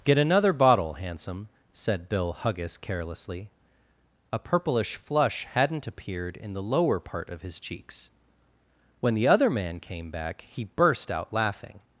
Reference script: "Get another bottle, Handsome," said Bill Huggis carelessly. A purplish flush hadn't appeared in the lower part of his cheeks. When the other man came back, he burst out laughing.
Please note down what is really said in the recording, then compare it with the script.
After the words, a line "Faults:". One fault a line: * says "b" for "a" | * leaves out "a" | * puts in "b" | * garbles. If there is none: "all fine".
"Get another bottle, Handsome," said Bill Huggis carelessly. A purplish flush hadn't appeared in the lower part of his cheeks. When the other man came back, he burst out laughing.
Faults:
all fine